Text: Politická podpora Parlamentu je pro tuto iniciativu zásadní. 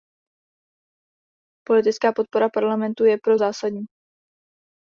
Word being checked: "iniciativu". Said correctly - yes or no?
no